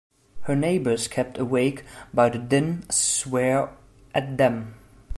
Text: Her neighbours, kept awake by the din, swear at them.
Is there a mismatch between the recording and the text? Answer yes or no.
no